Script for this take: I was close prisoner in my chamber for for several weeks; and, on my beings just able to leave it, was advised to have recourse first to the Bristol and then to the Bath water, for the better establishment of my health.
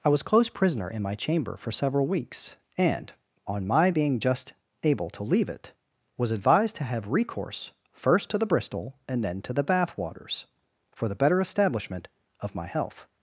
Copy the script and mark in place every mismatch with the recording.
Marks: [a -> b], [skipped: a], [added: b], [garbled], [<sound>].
I was close prisoner in my chamber for [skipped: for] several weeks; and, on my [beings -> being] just able to leave it, was advised to have recourse first to the Bristol and then to the Bath [water, -> waters] for the better establishment of my health.